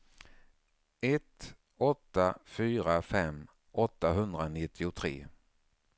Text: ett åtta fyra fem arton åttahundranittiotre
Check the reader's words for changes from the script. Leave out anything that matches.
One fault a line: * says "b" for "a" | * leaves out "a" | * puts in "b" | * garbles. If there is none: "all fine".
* leaves out "arton"